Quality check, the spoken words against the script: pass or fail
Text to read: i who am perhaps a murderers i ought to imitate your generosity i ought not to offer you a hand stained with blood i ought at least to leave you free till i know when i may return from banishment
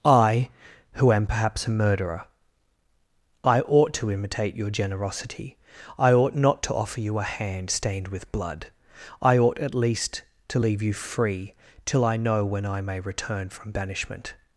fail